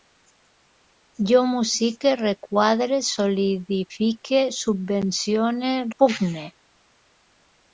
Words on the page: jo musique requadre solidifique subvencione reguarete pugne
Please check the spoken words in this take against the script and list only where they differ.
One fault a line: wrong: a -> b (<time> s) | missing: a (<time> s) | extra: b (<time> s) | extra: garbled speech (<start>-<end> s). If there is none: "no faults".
missing: reguarete (5.7 s)